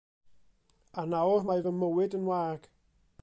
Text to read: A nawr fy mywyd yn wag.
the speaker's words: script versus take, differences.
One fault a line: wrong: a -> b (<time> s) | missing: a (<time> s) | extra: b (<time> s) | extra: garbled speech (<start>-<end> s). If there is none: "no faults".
extra: mae (1.5 s)